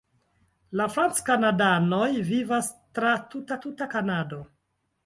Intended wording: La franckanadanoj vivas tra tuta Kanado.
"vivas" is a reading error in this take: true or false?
false